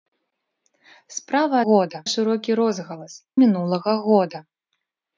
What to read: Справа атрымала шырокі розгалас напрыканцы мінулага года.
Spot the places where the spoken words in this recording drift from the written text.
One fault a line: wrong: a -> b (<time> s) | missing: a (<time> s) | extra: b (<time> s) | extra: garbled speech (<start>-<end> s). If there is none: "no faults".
wrong: атрымала -> года (1.7 s)
missing: напрыканцы (3.1 s)